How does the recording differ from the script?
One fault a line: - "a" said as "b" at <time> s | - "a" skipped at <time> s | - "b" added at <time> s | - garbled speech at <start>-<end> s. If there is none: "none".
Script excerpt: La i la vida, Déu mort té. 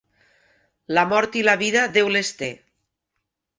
- "mort" added at 1.1 s
- "mort" said as "les" at 2.2 s